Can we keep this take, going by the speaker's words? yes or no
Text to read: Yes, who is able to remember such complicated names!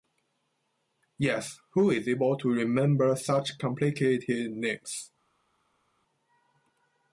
yes